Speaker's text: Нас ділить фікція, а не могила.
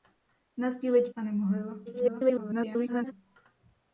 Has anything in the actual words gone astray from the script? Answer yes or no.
yes